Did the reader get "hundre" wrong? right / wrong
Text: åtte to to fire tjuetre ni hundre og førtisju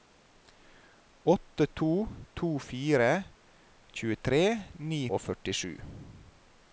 wrong